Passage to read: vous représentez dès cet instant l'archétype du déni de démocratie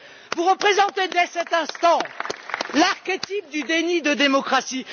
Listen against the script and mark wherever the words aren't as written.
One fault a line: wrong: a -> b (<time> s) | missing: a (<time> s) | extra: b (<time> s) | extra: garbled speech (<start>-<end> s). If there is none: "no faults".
no faults